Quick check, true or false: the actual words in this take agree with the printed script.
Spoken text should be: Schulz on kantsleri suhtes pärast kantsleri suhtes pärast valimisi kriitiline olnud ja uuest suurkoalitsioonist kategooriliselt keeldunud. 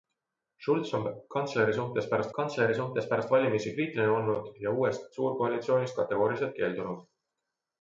true